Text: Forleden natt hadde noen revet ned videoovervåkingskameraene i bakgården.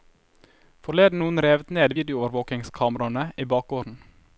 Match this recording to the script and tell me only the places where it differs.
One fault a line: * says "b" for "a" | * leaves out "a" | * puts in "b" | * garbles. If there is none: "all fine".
* leaves out "natt hadde"